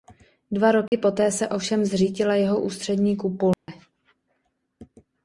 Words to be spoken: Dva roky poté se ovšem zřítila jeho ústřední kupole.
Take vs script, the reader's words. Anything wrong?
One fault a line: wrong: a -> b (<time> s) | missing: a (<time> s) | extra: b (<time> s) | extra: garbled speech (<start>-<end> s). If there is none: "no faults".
no faults